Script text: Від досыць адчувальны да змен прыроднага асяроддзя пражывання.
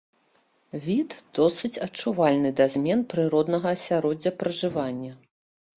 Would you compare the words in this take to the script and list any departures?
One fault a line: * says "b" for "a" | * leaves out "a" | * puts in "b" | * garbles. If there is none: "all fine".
all fine